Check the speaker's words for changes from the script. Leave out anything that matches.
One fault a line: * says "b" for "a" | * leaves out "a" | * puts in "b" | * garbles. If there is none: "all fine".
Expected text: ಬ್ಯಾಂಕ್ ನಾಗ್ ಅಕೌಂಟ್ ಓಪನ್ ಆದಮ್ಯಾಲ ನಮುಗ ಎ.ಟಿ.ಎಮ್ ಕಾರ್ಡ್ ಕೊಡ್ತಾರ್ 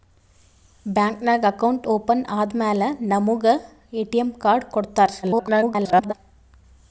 * garbles